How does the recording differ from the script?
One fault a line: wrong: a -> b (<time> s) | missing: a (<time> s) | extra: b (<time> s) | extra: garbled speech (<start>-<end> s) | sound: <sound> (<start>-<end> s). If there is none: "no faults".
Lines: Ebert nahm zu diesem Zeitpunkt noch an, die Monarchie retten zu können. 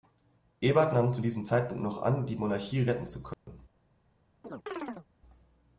sound: dropout (3.3-3.5 s)
sound: chirp (4.4-5.1 s)